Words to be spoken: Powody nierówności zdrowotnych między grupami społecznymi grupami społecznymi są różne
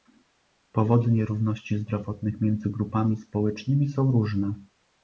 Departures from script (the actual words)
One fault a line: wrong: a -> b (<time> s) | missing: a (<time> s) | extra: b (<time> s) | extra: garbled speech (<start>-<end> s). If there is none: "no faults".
missing: grupami społecznymi (3.9 s)